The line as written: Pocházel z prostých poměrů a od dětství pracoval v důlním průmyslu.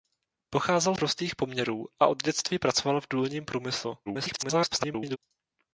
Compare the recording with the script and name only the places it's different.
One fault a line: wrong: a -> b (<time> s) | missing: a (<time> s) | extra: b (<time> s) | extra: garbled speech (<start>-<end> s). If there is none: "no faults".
missing: z (0.9 s)
extra: garbled speech (4.1-5.2 s)